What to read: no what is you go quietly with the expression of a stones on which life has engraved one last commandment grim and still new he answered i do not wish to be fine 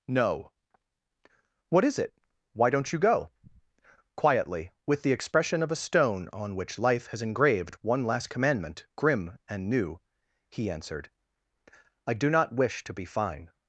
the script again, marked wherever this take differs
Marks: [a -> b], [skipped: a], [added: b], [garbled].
no what is [added: it why don't] you go quietly with the expression of a [stones -> stone] on which life has engraved one last commandment grim and [skipped: still] new he answered i do not wish to be fine